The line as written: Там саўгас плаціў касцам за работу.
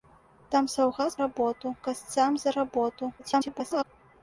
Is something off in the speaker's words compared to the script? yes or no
yes